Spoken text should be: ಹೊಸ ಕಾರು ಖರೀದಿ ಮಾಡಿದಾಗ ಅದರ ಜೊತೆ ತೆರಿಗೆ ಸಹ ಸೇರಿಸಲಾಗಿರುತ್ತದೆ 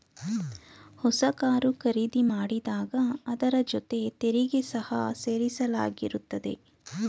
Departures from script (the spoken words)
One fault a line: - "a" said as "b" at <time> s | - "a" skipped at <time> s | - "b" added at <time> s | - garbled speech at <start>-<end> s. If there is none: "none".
none